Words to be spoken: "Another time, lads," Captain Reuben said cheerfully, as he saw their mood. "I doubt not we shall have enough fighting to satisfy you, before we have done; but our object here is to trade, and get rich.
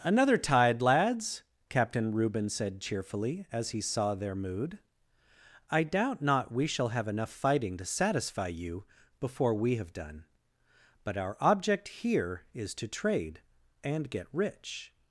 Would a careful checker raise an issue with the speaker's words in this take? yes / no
yes